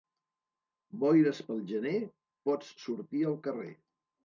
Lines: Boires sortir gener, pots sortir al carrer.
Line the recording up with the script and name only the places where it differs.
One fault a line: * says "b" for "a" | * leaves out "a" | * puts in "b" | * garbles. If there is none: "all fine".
* says "pel" for "sortir"